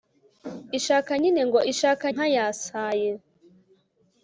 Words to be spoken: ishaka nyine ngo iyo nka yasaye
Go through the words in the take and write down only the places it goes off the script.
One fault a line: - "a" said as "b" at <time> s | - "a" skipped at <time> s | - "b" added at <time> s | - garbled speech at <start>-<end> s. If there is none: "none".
- "iyo" said as "ishaka" at 1.7 s